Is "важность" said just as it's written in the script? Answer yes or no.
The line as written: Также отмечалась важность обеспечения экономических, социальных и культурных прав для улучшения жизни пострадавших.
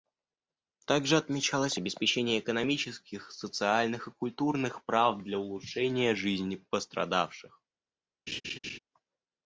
no